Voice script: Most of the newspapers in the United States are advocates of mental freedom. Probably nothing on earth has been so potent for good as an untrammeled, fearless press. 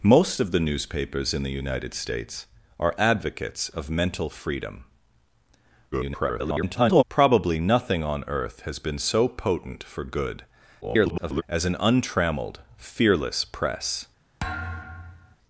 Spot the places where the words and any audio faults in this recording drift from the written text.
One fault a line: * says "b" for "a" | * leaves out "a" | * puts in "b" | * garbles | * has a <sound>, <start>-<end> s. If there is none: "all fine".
* garbles
* garbles
* has a thud, 14.4-15.4 s